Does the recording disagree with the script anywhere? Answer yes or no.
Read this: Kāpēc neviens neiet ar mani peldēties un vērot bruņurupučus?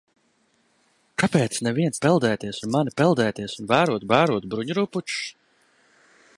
yes